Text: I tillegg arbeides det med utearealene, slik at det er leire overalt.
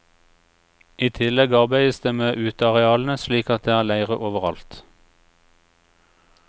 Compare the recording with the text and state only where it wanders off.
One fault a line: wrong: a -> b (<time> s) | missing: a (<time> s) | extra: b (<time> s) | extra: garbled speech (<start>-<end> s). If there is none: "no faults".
no faults